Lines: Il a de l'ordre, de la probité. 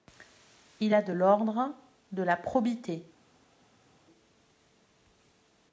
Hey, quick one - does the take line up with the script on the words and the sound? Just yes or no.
yes